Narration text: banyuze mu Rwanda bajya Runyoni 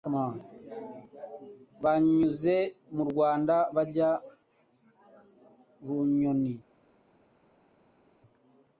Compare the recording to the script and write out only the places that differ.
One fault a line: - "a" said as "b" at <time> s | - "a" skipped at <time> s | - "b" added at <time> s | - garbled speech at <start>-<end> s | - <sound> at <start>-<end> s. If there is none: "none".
none